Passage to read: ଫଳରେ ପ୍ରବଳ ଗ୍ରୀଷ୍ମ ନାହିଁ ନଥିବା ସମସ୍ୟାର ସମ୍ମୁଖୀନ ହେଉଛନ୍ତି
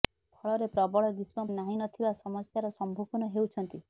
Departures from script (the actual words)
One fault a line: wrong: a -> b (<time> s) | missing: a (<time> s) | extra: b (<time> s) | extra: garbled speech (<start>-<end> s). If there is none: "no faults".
no faults